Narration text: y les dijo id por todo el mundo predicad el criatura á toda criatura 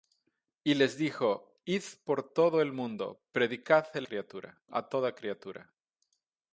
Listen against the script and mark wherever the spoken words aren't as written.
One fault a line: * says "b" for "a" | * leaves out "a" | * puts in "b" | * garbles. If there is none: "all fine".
all fine